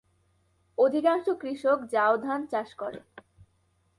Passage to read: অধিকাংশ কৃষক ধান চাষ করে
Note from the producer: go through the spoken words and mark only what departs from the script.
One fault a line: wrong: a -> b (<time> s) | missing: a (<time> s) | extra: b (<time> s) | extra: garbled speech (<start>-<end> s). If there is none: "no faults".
extra: জাও (1.9 s)